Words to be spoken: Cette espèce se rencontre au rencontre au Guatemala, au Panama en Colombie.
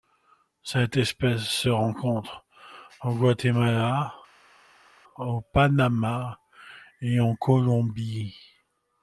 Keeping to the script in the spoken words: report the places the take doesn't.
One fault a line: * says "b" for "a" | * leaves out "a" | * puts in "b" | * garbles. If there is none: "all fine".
* leaves out "rencontre au"
* puts in "et"